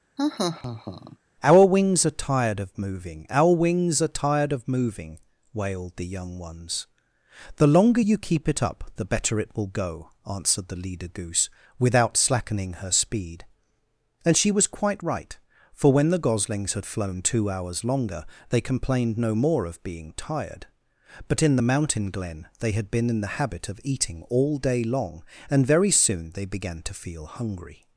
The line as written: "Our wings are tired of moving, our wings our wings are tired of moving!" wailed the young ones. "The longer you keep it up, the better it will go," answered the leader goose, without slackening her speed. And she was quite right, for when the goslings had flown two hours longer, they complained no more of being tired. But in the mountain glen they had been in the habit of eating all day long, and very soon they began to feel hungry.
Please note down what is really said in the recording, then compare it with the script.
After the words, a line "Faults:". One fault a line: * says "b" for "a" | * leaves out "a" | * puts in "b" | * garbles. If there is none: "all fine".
"Our wings are tired of moving, our wings are tired of moving!" wailed the young ones. "The longer you keep it up, the better it will go," answered the leader goose, without slackening her speed. And she was quite right, for when the goslings had flown two hours longer, they complained no more of being tired. But in the mountain glen they had been in the habit of eating all day long, and very soon they began to feel hungry.
Faults:
* leaves out "our wings"